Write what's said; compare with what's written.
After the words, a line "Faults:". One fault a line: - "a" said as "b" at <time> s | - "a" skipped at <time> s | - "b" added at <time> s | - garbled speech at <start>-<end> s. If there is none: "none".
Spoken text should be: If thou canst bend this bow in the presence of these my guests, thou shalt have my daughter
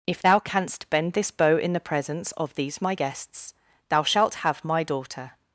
If thou canst bend this bow in the presence of these my guests, thou shalt have my daughter
Faults:
none